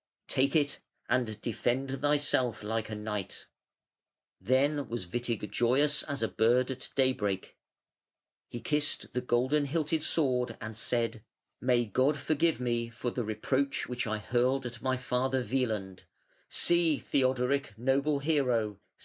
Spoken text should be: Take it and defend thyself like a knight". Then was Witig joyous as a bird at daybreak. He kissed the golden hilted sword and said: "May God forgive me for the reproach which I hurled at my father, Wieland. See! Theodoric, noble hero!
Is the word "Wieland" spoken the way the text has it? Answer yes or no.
yes